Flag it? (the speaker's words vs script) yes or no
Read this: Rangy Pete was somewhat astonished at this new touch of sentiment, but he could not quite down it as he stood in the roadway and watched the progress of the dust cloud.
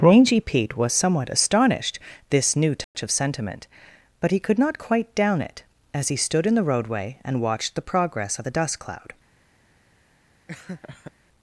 yes